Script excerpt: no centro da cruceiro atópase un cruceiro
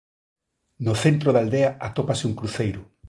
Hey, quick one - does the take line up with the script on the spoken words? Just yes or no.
no